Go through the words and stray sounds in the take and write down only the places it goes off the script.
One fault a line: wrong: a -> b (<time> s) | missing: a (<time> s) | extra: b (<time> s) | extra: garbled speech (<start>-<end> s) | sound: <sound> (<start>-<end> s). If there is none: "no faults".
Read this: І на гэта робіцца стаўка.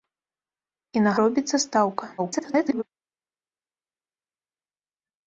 missing: гэта (1.1 s)
extra: garbled speech (2.2-2.8 s)